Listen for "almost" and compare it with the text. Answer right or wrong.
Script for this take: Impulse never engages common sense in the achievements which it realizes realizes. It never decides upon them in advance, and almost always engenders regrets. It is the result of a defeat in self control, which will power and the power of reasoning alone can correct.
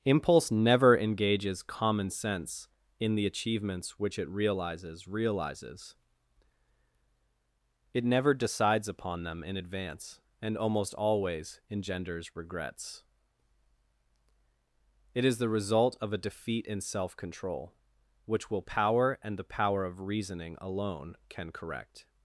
right